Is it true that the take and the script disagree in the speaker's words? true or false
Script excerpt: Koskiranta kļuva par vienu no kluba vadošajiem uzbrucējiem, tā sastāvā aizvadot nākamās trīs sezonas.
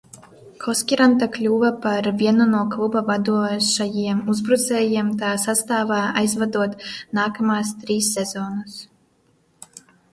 false